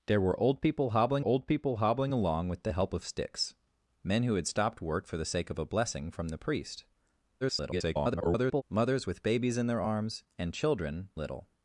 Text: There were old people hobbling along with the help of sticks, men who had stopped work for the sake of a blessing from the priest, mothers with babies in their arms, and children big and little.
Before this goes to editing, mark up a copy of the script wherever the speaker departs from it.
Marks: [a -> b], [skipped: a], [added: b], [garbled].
There were old people hobbling [added: old people hobbling] along with the help of sticks, men who had stopped work for the sake of a blessing from the priest, [garbled] mothers with babies in their arms, and children [skipped: big and] little.